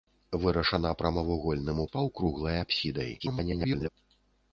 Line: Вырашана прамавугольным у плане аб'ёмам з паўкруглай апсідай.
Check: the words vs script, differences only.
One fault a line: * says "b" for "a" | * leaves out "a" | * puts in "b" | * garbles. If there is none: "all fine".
* leaves out "плане аб'ёмам"
* garbles